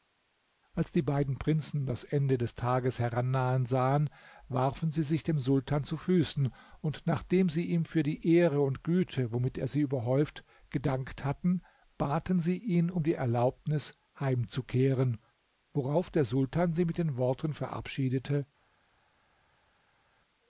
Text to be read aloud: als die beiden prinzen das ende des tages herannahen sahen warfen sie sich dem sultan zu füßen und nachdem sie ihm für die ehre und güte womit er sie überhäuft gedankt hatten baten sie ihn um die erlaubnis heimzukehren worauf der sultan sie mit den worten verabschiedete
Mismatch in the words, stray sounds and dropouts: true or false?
false